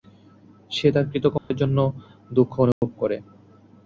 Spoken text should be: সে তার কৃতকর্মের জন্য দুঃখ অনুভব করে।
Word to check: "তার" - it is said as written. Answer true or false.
true